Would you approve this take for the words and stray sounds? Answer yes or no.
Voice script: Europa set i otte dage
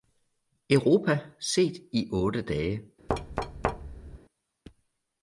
no